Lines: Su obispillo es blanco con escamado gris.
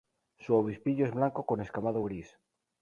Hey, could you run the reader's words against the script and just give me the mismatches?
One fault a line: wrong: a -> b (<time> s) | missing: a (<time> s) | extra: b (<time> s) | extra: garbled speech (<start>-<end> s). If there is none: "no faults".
no faults